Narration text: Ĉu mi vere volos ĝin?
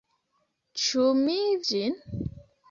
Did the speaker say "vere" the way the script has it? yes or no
no